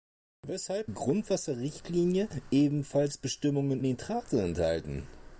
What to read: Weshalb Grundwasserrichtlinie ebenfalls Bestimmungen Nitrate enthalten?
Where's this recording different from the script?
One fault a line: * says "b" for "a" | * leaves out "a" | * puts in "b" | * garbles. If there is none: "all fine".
all fine